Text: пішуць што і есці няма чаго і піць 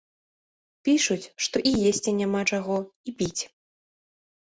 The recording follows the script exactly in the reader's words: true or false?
true